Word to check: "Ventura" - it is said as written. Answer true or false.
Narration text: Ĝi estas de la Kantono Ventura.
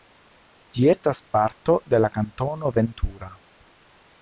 true